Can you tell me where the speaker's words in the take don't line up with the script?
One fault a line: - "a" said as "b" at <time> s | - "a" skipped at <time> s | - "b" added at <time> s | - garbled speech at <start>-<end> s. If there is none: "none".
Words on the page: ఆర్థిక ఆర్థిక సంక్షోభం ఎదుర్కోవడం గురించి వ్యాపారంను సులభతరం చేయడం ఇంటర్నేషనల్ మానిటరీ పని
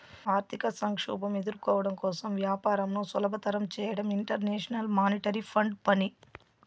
- "ఆర్థిక" skipped at 0.7 s
- "గురించి" said as "కోసం" at 2.0 s
- "ఫండ్" added at 5.5 s